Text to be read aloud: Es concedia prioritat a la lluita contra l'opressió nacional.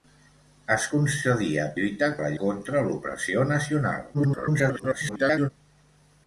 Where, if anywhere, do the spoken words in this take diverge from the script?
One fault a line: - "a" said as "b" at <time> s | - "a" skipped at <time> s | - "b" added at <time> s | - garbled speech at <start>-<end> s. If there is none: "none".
- "prioritat" said as "lluita" at 1.8 s
- "lluita" skipped at 2.3 s
- garbled speech at 4.1-5.5 s